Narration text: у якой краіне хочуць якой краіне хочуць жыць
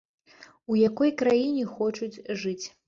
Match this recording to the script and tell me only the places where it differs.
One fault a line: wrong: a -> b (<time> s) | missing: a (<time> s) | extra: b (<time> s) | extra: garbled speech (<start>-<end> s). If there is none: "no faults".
missing: якой краіне хочуць (2.1 s)